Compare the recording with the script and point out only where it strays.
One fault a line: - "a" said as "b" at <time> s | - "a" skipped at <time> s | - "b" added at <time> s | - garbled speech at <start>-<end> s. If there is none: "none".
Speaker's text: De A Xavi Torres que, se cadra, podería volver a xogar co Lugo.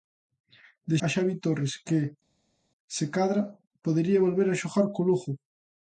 none